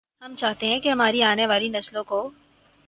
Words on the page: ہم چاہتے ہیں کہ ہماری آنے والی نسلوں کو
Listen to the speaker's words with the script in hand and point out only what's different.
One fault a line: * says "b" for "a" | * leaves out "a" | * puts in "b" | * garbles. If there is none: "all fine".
all fine